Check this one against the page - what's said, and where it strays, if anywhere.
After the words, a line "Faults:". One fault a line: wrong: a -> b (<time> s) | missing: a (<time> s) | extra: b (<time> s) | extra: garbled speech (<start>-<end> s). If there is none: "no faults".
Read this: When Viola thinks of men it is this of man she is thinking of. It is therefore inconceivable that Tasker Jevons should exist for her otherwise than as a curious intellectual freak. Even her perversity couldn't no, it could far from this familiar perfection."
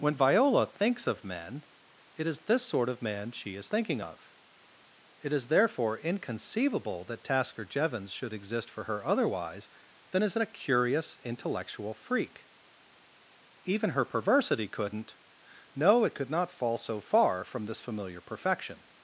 When Viola thinks of men it is this sort of man she is thinking of. It is therefore inconceivable that Tasker Jevons should exist for her otherwise than as a curious intellectual freak. Even her perversity couldn't no, it could not fall so far from this familiar perfection."
Faults:
extra: sort (2.6 s)
extra: not fall so (16.3 s)